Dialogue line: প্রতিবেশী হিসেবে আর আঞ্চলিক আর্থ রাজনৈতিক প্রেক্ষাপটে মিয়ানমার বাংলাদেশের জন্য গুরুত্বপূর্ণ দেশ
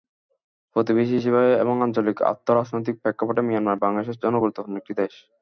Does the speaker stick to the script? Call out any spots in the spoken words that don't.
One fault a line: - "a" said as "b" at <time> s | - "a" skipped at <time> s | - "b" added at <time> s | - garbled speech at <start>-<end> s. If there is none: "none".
- "আর" said as "এবং" at 1.6 s
- "একটি" added at 4.8 s